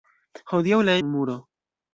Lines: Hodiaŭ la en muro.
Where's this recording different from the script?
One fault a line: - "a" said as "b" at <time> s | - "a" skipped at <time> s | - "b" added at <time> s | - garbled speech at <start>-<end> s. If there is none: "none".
none